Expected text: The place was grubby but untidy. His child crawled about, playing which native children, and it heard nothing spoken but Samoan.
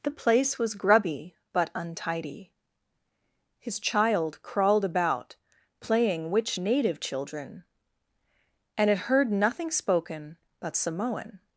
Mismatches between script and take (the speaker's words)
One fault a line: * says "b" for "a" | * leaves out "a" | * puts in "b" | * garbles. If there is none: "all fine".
all fine